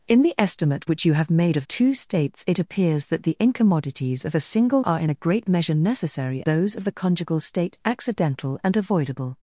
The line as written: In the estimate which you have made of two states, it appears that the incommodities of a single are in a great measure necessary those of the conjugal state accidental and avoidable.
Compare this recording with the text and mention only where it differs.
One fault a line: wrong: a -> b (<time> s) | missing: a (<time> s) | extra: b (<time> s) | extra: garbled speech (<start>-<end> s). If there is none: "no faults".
no faults